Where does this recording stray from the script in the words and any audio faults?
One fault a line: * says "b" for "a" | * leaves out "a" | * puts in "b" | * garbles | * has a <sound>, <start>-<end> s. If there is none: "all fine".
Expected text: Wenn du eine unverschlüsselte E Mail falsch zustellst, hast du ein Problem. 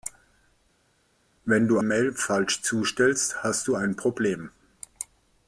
* leaves out "eine unverschlüsselte E"